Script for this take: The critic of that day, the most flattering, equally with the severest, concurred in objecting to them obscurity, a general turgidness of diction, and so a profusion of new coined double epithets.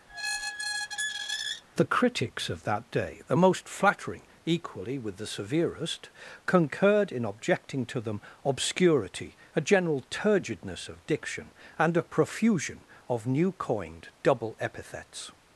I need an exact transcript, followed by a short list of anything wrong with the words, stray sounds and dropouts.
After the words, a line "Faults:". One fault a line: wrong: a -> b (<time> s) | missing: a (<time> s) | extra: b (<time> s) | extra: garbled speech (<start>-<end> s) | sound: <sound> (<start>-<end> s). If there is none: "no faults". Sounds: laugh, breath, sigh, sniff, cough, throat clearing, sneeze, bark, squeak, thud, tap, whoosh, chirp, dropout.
The critics of that day, the most flattering, equally with the severest, concurred in objecting to them obscurity, a general turgidness of diction, and a profusion of new coined double epithets.
Faults:
sound: squeak (0.1-1.6 s)
wrong: critic -> critics (1.8 s)
missing: so (11.9 s)